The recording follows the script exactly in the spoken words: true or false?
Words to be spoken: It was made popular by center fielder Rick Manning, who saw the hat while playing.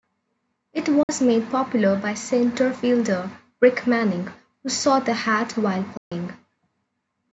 true